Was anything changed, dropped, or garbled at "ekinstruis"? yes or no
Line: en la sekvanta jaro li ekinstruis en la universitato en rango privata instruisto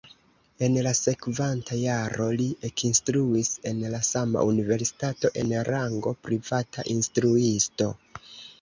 no